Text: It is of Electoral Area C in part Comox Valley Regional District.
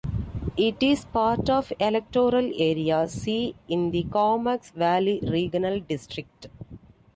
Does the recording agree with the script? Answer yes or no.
no